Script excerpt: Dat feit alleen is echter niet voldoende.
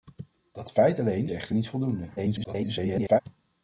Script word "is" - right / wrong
wrong